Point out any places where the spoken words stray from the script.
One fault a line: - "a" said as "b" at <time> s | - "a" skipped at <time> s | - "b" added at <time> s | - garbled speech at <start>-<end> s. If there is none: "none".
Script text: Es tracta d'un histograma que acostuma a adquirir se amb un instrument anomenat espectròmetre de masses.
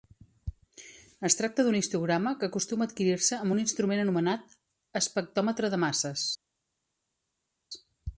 none